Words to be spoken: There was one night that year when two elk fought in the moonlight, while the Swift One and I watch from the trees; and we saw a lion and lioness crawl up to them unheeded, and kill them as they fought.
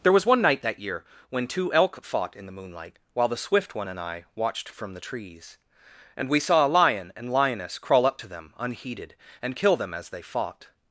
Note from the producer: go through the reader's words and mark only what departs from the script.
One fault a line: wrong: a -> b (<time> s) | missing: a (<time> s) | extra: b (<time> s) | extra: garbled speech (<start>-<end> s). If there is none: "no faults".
wrong: watch -> watched (4.3 s)